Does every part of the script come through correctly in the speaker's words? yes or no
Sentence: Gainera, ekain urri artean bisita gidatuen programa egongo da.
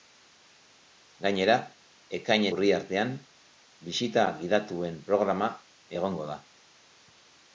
yes